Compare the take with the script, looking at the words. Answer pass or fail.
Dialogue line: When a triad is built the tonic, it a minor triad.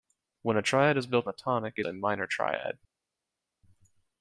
pass